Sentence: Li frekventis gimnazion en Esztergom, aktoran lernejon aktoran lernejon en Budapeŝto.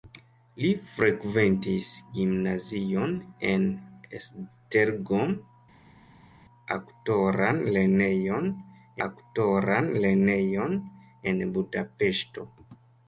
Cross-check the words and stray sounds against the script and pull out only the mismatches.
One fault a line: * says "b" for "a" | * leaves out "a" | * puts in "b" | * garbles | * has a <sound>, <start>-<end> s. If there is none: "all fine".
all fine